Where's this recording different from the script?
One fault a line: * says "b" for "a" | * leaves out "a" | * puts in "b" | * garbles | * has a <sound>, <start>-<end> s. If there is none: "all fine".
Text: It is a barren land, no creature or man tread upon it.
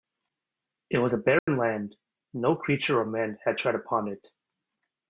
* says "was" for "is"
* has a dropout, 1.4-1.5 s
* puts in "had"